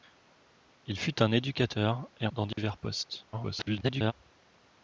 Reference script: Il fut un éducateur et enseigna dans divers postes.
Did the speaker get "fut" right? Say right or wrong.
right